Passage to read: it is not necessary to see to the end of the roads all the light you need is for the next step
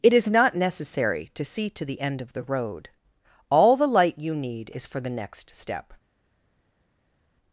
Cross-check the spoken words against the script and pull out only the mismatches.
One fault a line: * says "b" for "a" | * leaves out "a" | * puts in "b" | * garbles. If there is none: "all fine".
* says "road" for "roads"